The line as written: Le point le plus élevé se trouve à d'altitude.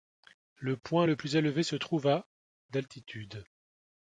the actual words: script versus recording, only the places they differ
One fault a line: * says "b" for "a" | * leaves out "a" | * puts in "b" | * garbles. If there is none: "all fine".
all fine